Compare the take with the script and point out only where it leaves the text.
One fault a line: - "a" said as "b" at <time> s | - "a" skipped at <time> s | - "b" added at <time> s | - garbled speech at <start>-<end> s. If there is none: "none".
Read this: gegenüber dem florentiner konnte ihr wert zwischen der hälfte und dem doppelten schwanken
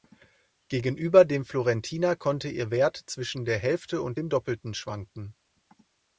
none